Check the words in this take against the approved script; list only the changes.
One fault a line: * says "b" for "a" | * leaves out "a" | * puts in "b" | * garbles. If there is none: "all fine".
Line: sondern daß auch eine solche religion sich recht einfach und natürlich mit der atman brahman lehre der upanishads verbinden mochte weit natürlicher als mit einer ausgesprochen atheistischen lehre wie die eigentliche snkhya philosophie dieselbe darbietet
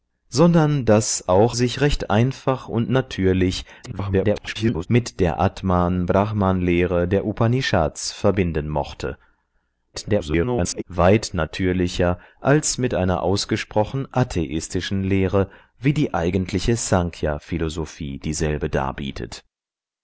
* leaves out "eine solche religion"
* garbles
* garbles